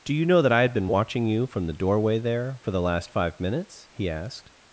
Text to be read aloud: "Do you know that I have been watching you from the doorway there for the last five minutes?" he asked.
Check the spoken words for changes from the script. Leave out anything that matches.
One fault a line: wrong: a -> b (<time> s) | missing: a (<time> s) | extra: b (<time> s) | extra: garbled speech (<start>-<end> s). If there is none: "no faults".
wrong: have -> had (0.6 s)